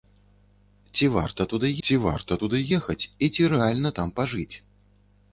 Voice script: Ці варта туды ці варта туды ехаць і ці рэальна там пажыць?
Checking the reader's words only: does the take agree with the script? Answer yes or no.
yes